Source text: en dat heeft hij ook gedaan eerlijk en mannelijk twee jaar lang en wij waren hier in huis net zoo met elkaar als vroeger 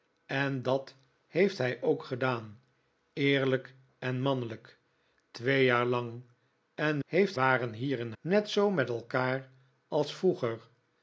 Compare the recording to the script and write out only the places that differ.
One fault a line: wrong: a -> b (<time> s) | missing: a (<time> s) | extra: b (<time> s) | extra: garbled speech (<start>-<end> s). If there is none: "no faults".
wrong: wij -> heeft (7.0 s)
missing: huis (8.1 s)